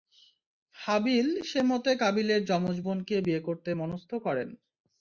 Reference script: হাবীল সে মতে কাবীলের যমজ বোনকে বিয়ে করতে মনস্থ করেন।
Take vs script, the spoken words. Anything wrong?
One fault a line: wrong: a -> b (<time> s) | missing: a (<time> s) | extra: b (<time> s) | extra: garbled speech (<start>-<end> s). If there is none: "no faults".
no faults